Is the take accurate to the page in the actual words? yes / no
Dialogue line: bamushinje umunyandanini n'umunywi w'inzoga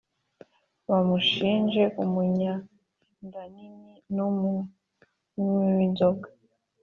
yes